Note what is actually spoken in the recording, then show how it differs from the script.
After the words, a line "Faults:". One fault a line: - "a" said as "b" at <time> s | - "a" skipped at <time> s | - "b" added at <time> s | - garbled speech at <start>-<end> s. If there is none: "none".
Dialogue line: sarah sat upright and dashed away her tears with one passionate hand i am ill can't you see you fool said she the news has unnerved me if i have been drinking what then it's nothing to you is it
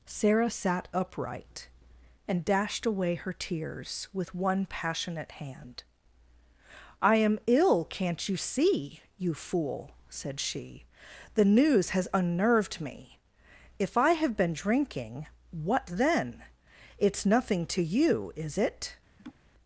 sarah sat upright and dashed away her tears with one passionate hand i am ill can't you see you fool said she the news has unnerved me if i have been drinking what then it's nothing to you is it
Faults:
none